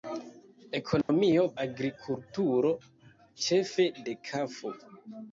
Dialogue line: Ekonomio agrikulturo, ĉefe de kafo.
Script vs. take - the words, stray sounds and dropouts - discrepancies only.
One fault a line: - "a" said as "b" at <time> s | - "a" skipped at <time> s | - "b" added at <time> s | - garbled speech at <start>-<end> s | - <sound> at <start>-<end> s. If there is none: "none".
- dropout at 1.0-1.1 s